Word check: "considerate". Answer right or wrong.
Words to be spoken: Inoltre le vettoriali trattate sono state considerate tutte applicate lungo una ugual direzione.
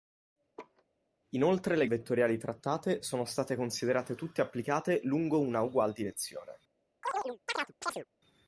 right